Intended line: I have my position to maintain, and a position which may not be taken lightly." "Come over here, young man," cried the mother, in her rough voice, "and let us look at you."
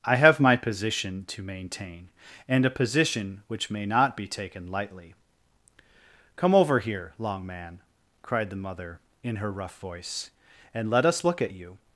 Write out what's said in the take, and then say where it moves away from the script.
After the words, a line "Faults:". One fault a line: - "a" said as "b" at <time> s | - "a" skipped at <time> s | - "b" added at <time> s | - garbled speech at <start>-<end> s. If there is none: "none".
I have my position to maintain, and a position which may not be taken lightly." "Come over here, long man," cried the mother, in her rough voice, "and let us look at you."
Faults:
- "young" said as "long" at 7.2 s